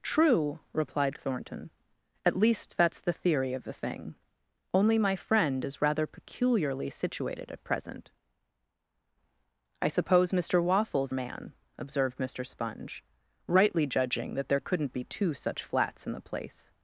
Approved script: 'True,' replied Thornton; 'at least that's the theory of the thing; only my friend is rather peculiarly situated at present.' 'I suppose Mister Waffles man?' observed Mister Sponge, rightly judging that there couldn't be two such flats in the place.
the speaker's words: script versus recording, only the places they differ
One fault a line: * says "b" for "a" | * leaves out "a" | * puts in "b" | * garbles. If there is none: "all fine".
all fine